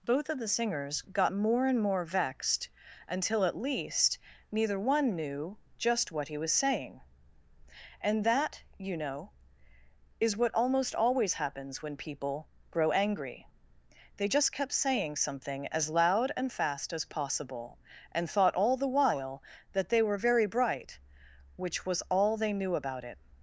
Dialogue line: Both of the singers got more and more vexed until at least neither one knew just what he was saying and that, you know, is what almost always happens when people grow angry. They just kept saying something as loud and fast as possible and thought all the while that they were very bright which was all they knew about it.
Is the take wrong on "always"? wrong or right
right